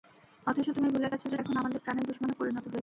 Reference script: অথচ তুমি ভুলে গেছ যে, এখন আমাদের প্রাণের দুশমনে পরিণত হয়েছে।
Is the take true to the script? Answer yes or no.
yes